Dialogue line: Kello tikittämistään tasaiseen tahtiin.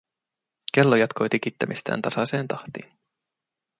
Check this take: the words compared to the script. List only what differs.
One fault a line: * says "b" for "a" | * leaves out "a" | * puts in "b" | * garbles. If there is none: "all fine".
* puts in "jatkoi"